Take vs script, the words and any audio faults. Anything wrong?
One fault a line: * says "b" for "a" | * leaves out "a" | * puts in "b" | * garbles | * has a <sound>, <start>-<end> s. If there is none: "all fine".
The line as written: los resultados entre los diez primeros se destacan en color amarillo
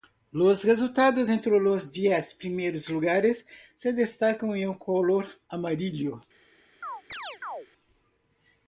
* puts in "lugares"
* has a chirp, 6.8-7.7 s